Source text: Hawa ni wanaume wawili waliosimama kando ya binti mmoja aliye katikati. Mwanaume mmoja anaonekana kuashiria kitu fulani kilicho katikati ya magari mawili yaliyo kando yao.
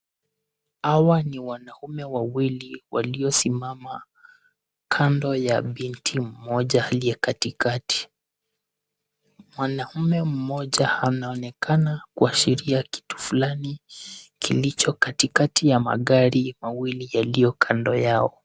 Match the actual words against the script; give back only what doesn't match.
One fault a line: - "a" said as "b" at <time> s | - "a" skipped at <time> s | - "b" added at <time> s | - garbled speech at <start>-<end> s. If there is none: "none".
none